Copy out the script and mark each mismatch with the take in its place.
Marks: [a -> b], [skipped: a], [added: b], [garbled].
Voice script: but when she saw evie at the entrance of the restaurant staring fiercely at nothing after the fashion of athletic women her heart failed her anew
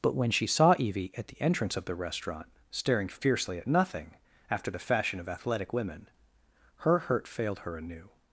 but when she saw evie at the entrance of the restaurant staring fiercely at nothing after the fashion of athletic women her [heart -> hurt] failed her anew